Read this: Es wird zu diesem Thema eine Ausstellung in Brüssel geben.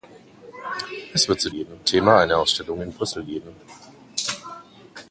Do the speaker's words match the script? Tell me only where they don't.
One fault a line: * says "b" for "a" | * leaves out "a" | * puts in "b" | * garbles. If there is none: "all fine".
* says "geben" for "diesem"